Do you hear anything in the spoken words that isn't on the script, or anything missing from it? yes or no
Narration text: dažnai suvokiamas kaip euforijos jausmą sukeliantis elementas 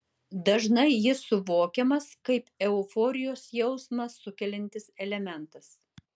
yes